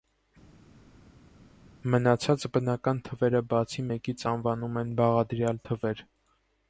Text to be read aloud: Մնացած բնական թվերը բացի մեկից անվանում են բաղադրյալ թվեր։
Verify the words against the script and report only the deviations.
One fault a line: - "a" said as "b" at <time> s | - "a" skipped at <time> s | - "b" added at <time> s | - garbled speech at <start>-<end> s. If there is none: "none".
none